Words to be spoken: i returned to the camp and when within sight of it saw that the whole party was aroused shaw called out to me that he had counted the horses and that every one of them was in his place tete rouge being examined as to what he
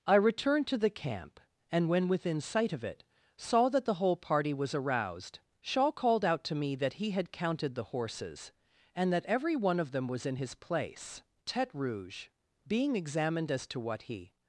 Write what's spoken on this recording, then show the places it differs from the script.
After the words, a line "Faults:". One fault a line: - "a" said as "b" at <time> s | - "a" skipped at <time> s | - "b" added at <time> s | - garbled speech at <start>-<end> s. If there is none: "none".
i returned to the camp and when within sight of it saw that the whole party was aroused shaw called out to me that he had counted the horses and that every one of them was in his place tete rouge being examined as to what he
Faults:
none